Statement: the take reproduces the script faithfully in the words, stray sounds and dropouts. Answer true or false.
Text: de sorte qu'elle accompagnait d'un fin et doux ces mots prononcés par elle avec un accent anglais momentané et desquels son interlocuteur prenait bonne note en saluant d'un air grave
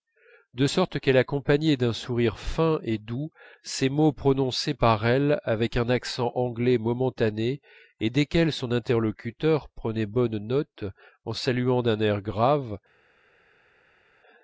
false